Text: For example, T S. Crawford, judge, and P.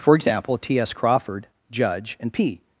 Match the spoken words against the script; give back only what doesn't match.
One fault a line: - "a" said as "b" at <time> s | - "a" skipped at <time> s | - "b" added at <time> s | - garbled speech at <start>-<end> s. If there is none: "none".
none